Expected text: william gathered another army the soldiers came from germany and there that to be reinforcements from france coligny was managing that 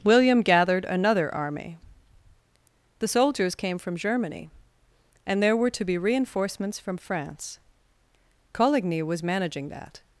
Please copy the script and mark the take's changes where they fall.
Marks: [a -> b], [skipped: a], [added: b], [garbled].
william gathered another army the soldiers came from germany and there [that -> were] to be reinforcements from france coligny was managing that